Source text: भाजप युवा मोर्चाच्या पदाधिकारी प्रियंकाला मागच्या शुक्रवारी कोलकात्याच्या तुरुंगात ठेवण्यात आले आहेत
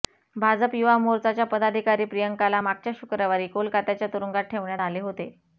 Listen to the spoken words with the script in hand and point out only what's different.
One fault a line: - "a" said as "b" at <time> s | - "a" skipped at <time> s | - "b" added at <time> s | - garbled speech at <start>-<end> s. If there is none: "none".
- "आहेत" said as "होते" at 5.0 s